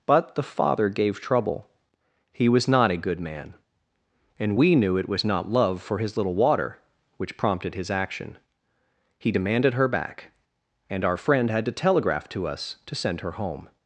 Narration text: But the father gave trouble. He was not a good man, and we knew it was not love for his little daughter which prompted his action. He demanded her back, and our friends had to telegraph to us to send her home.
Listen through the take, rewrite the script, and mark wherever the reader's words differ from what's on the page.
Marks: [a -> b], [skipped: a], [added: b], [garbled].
But the father gave trouble. He was not a good man, and we knew it was not love for his little [daughter -> water] which prompted his action. He demanded her back, and our [friends -> friend] had to telegraph to us to send her home.